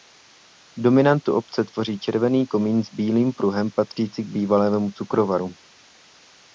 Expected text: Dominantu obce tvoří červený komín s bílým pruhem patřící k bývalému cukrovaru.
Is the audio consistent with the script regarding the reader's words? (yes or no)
yes